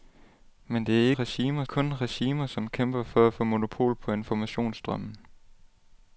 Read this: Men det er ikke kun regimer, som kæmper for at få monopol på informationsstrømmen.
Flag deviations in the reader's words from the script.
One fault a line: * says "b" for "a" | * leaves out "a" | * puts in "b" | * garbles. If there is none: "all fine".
* says "regimer" for "ikke"